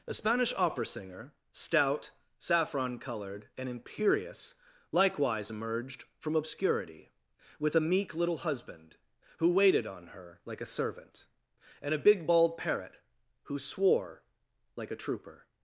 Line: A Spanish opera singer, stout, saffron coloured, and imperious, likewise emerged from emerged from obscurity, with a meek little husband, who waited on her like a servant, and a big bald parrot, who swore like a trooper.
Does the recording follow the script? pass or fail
fail